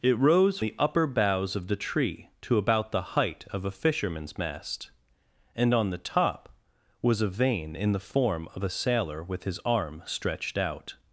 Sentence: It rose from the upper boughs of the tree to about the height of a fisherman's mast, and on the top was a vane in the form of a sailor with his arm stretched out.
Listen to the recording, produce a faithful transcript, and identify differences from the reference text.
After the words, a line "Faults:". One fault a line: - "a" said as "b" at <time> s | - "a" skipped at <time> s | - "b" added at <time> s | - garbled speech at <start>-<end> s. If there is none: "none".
It rose the upper boughs of the tree to about the height of a fisherman's mast, and on the top was a vane in the form of a sailor with his arm stretched out.
Faults:
- "from" skipped at 0.6 s